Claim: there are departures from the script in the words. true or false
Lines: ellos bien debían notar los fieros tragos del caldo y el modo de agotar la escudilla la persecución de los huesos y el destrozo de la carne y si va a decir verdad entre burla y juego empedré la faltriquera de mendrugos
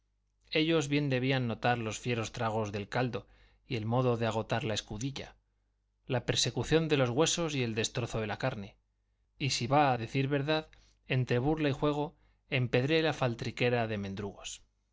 false